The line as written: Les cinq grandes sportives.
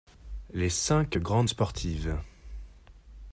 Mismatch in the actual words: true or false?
false